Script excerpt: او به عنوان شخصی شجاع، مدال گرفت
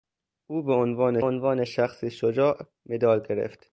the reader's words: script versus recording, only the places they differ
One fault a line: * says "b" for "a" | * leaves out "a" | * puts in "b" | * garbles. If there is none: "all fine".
* puts in "عنوان"